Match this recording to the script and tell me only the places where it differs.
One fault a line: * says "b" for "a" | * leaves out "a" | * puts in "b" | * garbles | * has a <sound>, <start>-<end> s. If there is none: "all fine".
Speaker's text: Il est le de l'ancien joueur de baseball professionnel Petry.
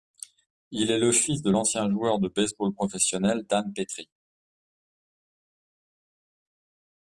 * puts in "fils"
* puts in "Dan"